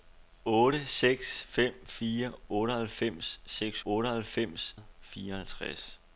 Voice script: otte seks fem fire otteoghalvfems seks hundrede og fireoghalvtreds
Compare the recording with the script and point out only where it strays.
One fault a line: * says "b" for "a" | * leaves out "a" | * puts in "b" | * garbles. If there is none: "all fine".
* says "otteoghalvfems" for "hundrede"